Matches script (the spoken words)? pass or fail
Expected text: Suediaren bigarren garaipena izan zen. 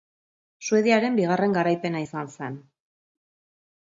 pass